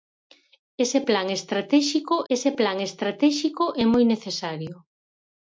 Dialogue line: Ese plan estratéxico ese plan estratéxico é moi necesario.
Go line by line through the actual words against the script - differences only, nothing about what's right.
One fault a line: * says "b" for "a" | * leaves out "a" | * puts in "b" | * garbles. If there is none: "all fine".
all fine